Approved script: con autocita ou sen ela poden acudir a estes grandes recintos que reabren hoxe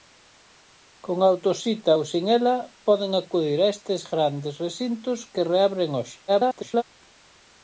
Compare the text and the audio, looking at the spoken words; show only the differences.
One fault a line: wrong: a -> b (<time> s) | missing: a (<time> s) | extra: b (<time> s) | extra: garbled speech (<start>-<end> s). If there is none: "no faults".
extra: garbled speech (6.3-6.8 s)